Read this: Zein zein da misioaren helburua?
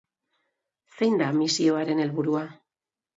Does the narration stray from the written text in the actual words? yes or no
yes